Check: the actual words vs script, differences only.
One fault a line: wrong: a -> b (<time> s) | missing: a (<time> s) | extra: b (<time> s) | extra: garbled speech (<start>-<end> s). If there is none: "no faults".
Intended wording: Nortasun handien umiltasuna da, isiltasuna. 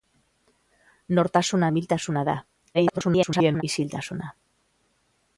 missing: handien (1.7 s)
extra: garbled speech (2.7-3.6 s)